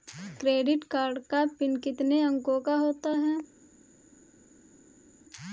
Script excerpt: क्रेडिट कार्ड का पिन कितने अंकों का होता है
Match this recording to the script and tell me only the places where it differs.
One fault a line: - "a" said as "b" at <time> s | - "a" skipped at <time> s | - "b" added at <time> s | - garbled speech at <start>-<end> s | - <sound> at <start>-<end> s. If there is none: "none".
none